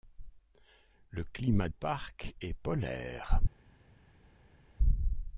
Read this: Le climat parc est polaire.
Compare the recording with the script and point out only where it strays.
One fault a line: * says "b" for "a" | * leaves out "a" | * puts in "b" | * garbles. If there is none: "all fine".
all fine